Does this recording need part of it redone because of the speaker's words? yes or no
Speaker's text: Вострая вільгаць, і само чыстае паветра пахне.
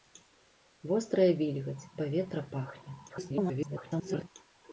yes